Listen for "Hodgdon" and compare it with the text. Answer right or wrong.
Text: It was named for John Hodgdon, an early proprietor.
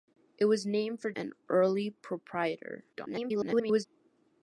wrong